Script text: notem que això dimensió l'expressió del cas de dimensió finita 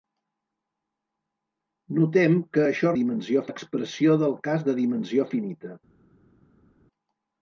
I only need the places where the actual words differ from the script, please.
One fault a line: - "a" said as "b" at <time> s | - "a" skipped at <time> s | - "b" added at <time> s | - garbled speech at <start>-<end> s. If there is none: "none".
none